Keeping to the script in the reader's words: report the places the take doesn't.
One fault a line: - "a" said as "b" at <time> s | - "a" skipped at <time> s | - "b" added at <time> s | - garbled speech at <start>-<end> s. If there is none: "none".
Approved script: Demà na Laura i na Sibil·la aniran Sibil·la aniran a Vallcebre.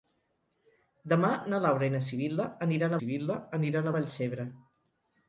none